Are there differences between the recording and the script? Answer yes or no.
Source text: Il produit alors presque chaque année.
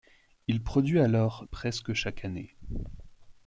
no